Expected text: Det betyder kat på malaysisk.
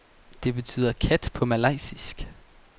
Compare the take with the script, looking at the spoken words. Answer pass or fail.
pass